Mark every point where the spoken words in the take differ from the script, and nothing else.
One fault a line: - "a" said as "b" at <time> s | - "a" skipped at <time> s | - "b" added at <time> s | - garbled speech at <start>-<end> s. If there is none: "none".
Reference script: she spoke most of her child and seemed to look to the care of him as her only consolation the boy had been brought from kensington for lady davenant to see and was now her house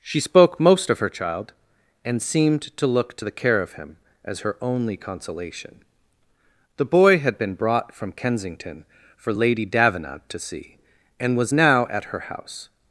- "at" added at 11.9 s